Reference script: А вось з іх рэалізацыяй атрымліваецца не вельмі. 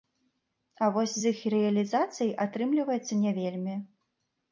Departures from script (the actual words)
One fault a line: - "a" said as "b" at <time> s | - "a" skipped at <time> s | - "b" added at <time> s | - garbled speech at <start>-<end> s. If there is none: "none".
none